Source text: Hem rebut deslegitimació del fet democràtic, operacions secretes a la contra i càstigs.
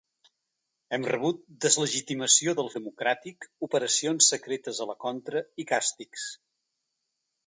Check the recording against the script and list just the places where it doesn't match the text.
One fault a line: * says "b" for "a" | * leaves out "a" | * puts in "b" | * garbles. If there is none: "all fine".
* leaves out "fet"